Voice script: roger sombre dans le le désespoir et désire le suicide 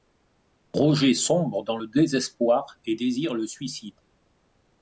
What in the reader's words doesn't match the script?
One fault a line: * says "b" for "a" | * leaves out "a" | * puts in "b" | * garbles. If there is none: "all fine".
* leaves out "le"